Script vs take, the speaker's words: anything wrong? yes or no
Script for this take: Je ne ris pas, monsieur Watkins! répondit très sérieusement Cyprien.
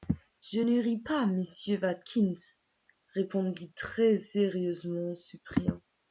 no